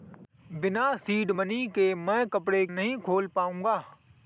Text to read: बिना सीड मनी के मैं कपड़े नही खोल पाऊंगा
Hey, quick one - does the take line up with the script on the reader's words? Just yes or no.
yes